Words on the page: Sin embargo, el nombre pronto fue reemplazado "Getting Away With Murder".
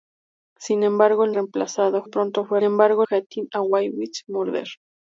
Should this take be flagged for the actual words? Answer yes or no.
yes